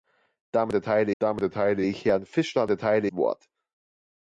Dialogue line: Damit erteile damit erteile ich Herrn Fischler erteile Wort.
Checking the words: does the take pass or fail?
pass